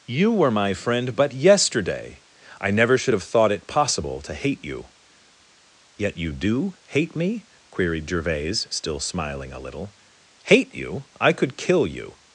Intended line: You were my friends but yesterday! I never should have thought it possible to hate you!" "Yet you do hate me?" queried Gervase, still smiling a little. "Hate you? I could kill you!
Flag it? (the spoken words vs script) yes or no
yes